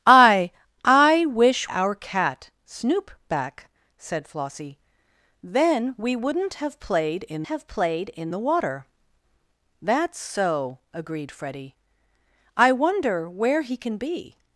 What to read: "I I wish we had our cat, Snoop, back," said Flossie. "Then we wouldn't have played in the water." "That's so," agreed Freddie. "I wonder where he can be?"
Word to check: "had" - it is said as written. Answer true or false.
false